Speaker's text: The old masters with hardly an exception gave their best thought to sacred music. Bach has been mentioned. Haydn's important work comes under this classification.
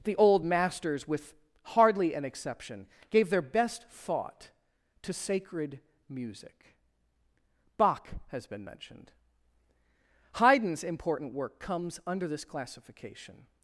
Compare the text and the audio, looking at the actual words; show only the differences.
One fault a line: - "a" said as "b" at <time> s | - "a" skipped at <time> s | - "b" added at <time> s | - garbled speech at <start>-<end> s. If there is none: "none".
none